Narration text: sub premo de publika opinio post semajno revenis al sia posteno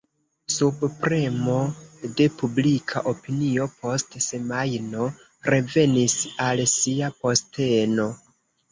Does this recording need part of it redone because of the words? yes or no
no